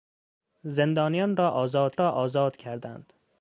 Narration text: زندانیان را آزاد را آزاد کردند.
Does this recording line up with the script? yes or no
yes